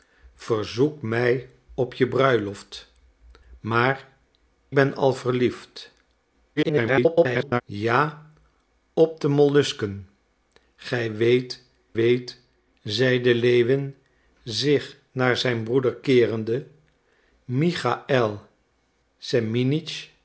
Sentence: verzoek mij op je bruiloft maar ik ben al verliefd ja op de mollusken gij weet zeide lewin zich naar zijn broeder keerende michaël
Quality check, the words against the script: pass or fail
fail